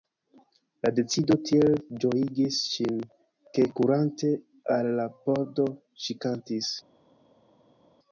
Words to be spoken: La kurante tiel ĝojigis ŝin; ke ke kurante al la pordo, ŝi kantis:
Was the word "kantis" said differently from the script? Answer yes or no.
no